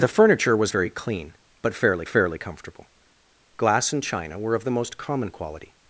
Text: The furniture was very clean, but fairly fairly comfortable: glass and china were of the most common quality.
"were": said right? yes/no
yes